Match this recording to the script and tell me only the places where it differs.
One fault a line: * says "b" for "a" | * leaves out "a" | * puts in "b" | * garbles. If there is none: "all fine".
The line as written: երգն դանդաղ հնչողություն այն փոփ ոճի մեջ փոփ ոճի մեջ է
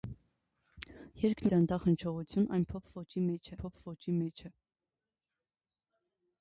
all fine